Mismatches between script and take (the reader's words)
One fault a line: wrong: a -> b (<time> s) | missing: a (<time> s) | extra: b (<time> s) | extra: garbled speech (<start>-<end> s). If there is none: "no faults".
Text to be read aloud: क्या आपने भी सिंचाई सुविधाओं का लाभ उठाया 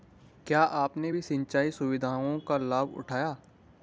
no faults